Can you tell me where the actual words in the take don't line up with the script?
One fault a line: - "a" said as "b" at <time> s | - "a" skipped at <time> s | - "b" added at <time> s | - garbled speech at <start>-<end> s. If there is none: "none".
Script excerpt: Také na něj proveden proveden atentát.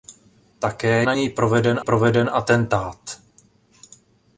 none